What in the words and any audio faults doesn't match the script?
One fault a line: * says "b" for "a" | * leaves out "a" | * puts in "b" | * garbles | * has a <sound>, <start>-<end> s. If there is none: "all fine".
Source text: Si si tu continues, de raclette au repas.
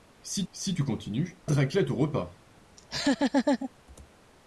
* has a laugh, 2.8-3.7 s